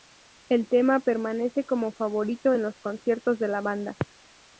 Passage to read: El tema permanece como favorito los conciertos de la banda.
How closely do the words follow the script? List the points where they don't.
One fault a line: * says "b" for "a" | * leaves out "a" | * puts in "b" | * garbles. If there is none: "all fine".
* puts in "en"